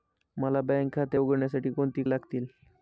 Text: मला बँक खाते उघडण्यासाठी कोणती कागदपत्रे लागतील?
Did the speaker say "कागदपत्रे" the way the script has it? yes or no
no